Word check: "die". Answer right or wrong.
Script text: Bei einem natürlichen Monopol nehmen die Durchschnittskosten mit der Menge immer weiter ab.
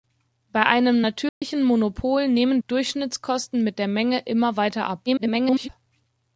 wrong